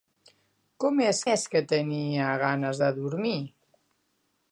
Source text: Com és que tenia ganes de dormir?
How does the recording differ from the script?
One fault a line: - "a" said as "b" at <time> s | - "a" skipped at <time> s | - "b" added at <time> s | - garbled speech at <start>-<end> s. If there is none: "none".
- "és" added at 1.3 s